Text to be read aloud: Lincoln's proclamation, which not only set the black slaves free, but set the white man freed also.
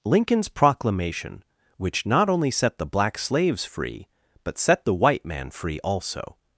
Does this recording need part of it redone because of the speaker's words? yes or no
yes